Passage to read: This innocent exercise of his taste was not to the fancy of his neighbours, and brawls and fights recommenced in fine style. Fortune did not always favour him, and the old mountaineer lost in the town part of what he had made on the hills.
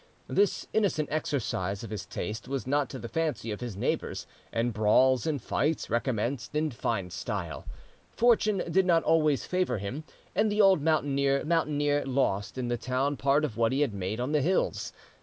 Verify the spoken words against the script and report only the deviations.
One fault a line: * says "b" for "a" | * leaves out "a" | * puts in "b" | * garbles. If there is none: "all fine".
* puts in "mountaineer"